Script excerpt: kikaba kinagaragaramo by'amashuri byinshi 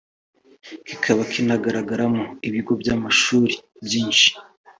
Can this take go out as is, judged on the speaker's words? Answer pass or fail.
fail